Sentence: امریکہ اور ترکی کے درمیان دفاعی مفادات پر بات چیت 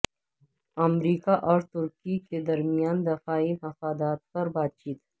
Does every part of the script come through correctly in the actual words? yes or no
yes